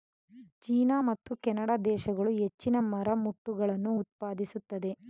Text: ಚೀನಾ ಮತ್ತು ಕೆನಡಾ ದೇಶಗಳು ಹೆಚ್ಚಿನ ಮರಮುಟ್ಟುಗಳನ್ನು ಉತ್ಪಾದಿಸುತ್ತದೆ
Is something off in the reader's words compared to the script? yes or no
no